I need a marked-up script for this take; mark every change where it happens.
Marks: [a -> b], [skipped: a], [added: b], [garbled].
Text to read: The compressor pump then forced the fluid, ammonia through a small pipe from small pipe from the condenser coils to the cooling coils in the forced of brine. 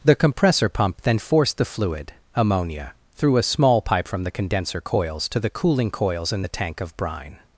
The compressor pump then forced the fluid, ammonia through a small pipe from [skipped: small pipe from] the condenser coils to the cooling coils in the [forced -> tank] of brine.